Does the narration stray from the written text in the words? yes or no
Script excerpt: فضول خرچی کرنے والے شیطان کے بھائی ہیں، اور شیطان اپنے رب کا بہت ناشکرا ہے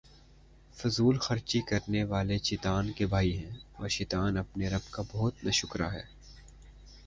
no